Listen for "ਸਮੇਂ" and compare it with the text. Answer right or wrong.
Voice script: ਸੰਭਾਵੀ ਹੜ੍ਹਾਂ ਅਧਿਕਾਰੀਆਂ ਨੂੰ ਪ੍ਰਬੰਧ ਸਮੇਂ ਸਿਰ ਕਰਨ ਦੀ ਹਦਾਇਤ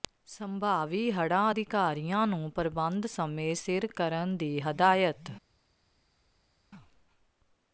right